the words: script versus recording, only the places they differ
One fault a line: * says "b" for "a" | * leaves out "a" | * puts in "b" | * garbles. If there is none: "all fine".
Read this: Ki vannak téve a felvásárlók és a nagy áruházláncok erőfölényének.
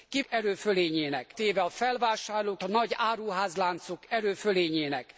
* says "erőfölényének" for "vannak"
* leaves out "és"